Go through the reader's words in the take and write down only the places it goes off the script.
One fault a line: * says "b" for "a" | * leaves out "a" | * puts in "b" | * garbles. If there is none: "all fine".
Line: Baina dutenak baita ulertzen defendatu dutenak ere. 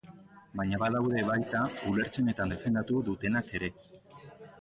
* says "badaude" for "dutenak"
* puts in "eta"